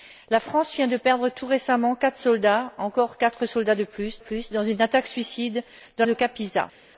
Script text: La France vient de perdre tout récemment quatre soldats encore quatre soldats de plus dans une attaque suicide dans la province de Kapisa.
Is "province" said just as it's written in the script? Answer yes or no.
no